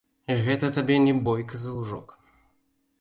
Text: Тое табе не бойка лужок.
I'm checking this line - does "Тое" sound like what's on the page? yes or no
no